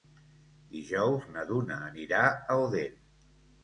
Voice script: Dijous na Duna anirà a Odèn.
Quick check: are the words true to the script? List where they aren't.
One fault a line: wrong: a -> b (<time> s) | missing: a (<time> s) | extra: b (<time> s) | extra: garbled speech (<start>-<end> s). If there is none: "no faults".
no faults